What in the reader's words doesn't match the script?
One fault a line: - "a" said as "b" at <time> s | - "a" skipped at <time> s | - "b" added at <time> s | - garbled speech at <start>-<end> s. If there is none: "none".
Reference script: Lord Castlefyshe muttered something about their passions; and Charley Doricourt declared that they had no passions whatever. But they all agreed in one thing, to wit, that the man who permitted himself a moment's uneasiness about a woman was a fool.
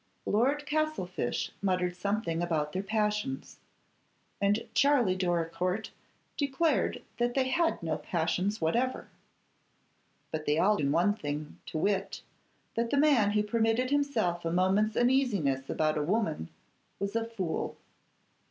- "agreed" skipped at 10.8 s